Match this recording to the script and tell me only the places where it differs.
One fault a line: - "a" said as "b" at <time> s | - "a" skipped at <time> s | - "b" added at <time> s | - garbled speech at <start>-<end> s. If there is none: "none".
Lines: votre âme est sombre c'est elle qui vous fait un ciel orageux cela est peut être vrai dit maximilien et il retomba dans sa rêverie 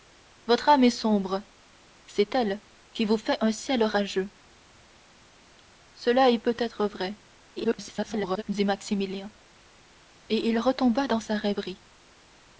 - garbled speech at 7.6-8.4 s